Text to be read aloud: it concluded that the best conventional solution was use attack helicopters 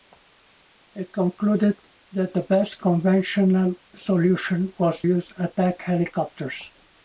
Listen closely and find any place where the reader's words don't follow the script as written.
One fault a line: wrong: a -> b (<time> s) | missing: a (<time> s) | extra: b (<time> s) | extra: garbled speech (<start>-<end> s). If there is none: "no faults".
no faults